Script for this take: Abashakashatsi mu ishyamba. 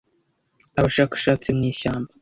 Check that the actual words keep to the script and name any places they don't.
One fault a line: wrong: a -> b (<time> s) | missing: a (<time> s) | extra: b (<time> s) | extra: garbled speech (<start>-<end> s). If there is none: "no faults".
no faults